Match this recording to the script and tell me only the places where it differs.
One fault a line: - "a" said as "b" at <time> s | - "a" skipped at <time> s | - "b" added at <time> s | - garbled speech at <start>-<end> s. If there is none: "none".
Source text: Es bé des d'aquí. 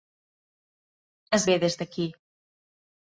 none